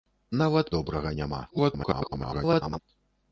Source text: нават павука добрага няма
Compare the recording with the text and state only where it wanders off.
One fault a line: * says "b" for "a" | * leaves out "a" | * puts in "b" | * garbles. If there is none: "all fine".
* leaves out "павука"
* garbles